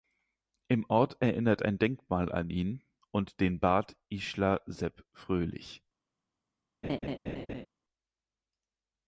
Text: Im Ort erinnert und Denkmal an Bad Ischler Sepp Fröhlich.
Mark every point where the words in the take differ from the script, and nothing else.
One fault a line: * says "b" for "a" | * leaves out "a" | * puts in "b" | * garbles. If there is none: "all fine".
* says "ein" for "und"
* puts in "ihn und den"